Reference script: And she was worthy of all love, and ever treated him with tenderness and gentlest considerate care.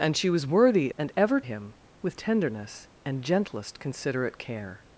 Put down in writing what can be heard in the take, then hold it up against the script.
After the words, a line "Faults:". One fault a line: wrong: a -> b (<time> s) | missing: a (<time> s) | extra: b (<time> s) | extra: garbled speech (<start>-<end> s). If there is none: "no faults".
And she was worthy and ever him with tenderness and gentlest considerate care.
Faults:
missing: of all love (0.9 s)
missing: treated (1.4 s)